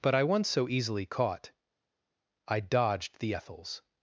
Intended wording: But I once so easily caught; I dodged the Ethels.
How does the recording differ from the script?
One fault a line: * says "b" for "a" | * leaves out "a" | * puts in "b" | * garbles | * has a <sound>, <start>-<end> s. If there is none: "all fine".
all fine